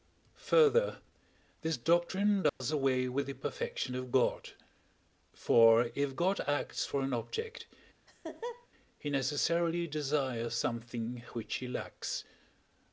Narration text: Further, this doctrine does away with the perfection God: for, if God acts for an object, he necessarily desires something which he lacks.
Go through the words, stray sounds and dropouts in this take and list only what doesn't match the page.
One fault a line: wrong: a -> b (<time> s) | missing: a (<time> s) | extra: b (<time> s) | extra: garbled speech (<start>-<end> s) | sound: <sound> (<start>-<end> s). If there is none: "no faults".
sound: dropout (2.5-2.6 s)
extra: of (3.9 s)
sound: laugh (8.1-8.7 s)